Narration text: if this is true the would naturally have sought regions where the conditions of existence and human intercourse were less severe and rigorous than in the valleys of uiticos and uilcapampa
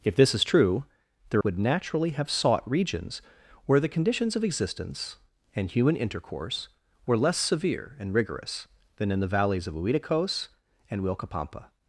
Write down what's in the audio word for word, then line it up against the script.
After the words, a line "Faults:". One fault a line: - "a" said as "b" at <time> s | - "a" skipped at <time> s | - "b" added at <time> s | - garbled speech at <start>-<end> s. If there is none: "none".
if this is true the would naturally have sought regions where the conditions of existence and human intercourse were less severe and rigorous than in the valleys of uiticos and uilcapampa
Faults:
none